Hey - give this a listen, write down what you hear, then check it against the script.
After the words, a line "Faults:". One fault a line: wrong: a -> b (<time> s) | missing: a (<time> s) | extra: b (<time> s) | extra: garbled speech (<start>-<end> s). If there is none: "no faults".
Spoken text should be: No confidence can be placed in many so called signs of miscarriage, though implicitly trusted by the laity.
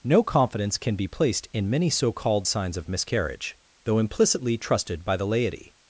No confidence can be placed in many so called signs of miscarriage, though implicitly trusted by the laity.
Faults:
no faults